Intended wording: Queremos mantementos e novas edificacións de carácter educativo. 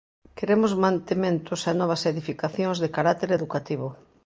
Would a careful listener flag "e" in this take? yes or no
no